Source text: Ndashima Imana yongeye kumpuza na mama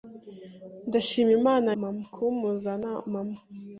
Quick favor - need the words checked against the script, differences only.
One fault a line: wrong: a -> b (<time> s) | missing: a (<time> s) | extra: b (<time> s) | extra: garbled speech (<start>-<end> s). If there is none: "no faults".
wrong: yongeye -> mama (1.8 s)